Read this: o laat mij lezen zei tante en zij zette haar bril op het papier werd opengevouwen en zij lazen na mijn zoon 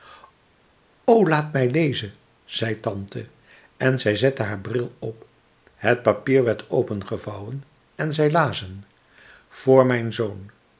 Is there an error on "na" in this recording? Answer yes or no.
yes